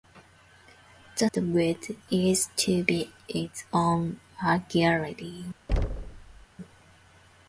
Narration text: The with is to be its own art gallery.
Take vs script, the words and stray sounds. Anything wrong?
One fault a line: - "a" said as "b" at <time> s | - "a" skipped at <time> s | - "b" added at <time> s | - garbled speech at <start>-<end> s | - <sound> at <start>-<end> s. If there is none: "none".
- thud at 5.7-6.5 s